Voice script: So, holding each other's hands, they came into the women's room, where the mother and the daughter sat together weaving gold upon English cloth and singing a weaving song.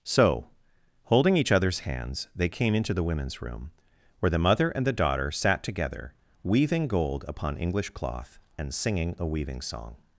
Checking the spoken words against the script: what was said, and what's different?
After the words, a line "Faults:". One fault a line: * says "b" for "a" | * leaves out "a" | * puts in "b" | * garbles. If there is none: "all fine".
So, holding each other's hands, they came into the women's room, where the mother and the daughter sat together weaving gold upon English cloth and singing a weaving song.
Faults:
all fine